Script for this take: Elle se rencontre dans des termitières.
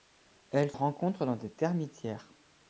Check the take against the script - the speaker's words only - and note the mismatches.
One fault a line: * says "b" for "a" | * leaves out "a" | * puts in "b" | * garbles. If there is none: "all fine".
* leaves out "se"